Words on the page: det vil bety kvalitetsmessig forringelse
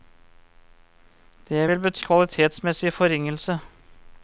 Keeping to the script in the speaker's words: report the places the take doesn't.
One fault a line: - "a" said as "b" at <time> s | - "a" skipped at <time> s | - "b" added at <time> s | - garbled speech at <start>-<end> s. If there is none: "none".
none